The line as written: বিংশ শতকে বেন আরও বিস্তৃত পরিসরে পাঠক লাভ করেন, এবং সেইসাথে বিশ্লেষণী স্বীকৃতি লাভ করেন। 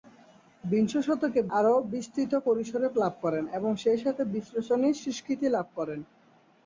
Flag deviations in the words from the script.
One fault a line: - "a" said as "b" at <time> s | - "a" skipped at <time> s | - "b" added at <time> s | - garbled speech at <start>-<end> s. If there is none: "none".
- "বেন" skipped at 1.4 s
- "পাঠক" skipped at 2.9 s